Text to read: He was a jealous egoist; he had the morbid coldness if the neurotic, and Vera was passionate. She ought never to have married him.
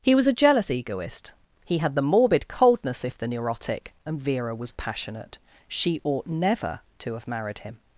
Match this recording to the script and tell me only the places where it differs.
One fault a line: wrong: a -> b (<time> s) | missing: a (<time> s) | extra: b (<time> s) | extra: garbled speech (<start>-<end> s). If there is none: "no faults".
no faults